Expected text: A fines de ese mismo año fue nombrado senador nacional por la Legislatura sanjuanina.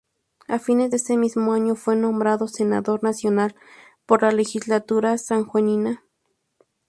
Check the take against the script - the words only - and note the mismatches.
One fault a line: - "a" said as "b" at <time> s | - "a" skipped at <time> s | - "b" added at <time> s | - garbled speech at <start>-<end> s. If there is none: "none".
none